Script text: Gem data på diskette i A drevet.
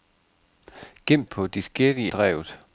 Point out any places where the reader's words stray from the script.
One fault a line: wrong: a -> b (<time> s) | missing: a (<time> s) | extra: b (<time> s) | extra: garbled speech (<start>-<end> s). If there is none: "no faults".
missing: data (1.2 s)
missing: A (2.1 s)